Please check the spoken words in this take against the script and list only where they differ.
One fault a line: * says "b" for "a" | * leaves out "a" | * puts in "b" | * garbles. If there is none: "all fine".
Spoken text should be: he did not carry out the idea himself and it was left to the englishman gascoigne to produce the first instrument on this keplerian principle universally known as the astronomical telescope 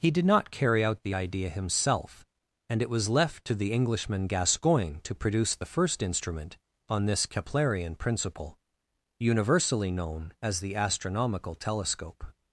all fine